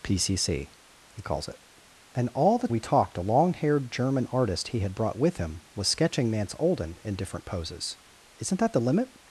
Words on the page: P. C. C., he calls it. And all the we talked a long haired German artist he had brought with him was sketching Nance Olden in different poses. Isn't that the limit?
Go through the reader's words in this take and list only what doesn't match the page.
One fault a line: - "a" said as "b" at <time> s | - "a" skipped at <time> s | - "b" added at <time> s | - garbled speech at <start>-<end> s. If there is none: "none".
none